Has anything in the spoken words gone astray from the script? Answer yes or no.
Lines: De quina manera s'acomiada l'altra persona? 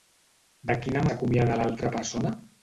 yes